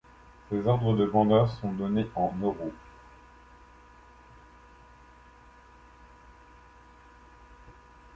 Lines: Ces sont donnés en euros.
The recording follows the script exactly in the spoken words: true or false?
false